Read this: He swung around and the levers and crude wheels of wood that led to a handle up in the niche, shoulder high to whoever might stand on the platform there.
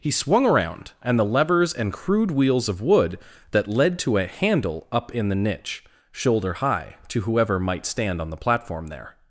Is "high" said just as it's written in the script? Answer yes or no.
yes